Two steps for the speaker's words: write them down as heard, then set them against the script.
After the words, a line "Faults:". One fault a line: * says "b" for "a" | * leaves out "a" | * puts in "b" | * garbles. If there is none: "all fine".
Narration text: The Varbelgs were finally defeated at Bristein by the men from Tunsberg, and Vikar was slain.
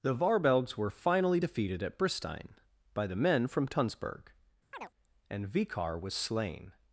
The Varbelgs were finally defeated at Bristein by the men from Tunsberg, and Vikar was slain.
Faults:
all fine